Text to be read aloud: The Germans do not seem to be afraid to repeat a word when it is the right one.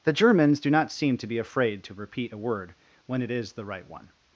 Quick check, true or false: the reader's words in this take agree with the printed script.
true